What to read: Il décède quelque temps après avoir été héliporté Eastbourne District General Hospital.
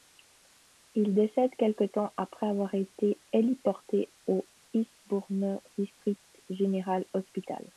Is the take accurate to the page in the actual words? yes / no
no